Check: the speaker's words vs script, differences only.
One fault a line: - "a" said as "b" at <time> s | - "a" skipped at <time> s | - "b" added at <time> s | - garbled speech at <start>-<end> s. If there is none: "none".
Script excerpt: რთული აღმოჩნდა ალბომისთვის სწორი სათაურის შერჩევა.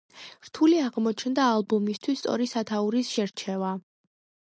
none